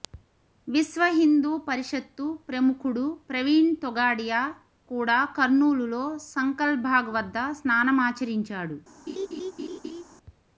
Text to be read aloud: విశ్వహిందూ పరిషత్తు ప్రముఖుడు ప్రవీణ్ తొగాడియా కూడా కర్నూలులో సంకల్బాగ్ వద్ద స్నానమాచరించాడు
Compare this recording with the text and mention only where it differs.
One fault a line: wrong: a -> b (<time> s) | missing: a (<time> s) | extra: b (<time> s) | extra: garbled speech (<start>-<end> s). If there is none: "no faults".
no faults